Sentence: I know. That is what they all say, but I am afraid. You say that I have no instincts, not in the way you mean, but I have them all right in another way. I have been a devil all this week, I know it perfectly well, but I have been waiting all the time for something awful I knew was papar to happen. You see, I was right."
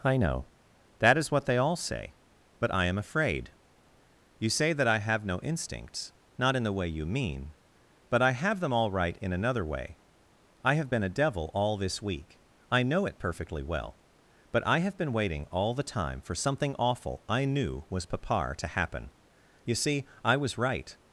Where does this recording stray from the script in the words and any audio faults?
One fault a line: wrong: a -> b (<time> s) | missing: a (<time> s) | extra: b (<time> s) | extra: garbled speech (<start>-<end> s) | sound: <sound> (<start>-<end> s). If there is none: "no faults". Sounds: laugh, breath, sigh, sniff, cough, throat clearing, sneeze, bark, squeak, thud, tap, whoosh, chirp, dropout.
no faults